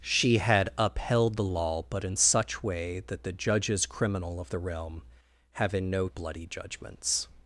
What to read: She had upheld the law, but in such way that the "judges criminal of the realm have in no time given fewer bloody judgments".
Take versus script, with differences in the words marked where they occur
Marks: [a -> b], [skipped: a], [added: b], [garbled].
She had upheld the law, but in such way that the "judges criminal of the realm have in no [skipped: time given fewer] bloody judgments".